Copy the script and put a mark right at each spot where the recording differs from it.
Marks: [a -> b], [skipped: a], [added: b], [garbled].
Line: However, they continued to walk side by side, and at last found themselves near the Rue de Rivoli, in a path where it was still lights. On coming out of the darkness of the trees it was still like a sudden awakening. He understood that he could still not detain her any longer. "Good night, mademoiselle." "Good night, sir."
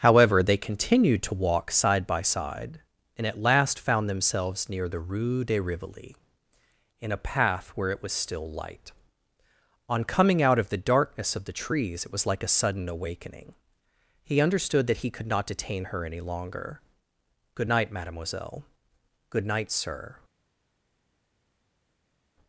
However, they continued to walk side by side, and at last found themselves near the Rue de Rivoli, in a path where it was still [lights. -> light] On coming out of the darkness of the trees it was [skipped: still] like a sudden awakening. He understood that he could [skipped: still] not detain her any longer. "Good night, mademoiselle." "Good night, sir."